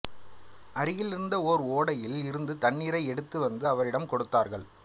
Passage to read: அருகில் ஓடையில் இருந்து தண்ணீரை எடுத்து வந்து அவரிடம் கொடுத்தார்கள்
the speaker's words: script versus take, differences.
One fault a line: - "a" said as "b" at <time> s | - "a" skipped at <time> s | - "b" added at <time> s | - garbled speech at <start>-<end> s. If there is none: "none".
- "இருந்த ஓர்" added at 1.1 s